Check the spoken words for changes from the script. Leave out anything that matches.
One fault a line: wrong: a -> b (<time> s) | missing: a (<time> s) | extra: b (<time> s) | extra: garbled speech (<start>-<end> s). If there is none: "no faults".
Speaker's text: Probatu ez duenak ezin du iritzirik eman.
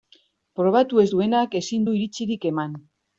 no faults